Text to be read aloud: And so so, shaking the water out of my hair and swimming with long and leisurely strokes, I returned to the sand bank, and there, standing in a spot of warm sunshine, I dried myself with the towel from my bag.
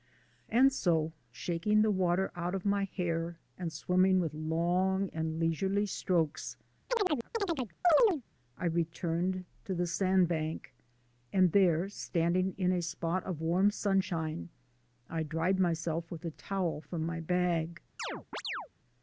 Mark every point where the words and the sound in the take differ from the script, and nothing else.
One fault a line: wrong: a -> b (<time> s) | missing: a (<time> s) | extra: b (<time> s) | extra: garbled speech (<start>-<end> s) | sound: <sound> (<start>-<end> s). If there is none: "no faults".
missing: so (1.1 s)
sound: chirp (6.9-8.2 s)
sound: chirp (18.0-18.7 s)